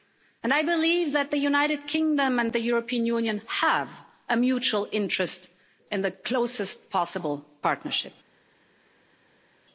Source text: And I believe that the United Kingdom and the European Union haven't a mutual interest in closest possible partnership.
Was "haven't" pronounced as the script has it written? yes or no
no